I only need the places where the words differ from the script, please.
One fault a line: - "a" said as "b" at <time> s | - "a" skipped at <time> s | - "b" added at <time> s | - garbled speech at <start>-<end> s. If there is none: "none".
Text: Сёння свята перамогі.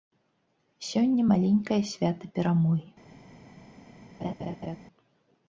- "маленькае" added at 1.3 s